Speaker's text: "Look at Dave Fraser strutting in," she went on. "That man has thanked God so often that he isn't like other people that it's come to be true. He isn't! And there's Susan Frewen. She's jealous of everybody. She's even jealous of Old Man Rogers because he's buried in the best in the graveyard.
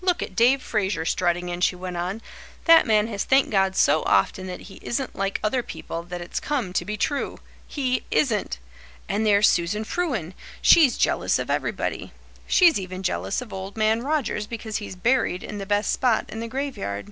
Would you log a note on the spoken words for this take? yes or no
yes